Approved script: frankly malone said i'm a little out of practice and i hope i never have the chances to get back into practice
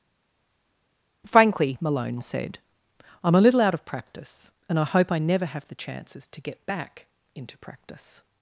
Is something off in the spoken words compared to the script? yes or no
no